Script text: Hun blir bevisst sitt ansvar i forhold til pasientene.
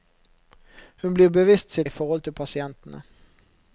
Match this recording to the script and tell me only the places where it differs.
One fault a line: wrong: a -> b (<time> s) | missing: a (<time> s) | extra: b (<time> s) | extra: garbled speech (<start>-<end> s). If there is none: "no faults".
missing: ansvar (1.9 s)